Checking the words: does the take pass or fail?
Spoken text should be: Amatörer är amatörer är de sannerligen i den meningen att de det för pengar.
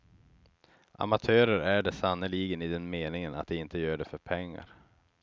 fail